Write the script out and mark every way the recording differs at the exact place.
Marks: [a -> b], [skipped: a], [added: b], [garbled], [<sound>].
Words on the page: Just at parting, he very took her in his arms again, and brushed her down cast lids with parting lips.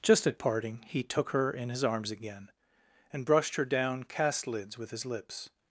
Just at parting, he [skipped: very] took her in his arms again, and brushed her down cast lids with [parting -> his] lips.